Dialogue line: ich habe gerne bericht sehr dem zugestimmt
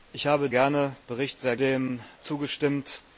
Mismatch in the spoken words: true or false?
false